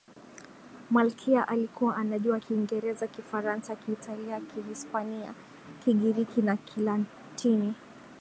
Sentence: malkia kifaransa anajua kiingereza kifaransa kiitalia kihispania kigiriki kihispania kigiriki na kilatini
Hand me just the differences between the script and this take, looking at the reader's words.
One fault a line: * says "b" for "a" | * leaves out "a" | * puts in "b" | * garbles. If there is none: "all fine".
* says "alikuwa" for "kifaransa"
* leaves out "kihispania kigiriki"